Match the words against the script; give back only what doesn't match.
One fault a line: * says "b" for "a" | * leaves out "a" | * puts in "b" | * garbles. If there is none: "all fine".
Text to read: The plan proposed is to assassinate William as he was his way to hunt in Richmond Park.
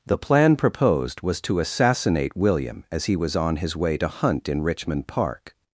* says "was" for "is"
* puts in "on"